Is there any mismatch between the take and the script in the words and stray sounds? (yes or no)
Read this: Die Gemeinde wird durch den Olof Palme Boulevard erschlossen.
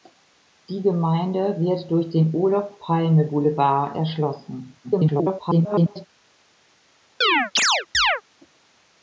yes